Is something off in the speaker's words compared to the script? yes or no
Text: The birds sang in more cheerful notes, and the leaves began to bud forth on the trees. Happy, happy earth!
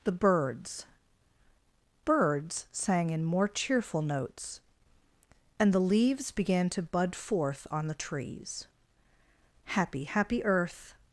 yes